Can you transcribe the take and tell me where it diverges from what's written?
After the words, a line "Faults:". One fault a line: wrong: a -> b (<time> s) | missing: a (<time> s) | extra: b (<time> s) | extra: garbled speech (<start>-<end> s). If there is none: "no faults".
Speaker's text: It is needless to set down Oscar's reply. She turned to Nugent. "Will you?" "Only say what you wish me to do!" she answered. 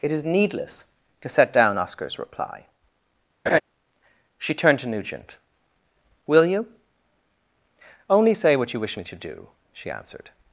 It is needless to set down Oscar's reply. She turned to Nugent. "Will you?" "Only say what you wish me to do!" she answered.
Faults:
no faults